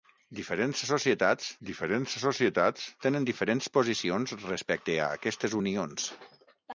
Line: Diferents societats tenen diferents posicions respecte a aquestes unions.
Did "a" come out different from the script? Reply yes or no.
no